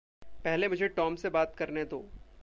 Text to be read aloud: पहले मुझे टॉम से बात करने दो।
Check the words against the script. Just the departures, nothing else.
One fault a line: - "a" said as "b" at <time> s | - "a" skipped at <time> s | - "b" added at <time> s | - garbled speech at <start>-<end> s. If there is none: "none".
none